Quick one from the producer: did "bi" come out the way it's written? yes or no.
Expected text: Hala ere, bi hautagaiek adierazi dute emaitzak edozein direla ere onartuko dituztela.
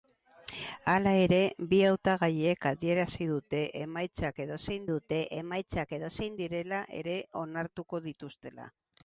yes